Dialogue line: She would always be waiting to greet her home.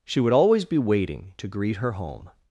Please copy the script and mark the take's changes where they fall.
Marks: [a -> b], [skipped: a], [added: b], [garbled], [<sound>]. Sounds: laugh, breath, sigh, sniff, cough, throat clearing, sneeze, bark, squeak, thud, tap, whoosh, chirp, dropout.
She would always be waiting to greet her home.